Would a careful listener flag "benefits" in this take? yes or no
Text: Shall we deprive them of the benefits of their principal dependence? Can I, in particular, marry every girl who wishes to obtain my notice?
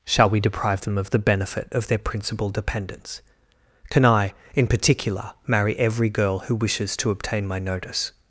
yes